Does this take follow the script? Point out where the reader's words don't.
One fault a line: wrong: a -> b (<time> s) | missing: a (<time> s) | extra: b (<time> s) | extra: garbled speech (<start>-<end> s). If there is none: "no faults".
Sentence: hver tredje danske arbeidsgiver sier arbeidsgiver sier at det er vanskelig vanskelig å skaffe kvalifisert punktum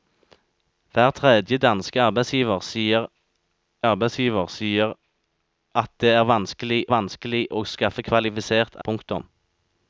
no faults